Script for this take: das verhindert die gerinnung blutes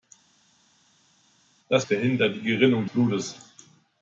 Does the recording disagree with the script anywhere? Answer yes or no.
no